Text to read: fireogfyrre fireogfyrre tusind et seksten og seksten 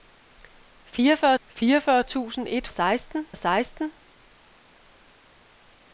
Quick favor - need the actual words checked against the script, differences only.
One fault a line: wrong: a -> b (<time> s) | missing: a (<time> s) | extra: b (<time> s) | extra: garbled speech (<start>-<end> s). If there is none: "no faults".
no faults